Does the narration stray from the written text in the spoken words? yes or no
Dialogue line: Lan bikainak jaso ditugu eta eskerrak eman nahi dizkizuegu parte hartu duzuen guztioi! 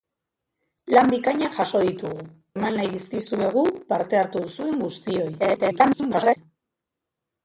yes